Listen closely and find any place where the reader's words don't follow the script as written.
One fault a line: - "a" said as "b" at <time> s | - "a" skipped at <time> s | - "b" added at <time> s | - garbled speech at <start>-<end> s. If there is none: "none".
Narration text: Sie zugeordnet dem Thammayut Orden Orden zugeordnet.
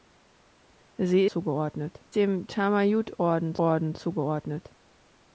none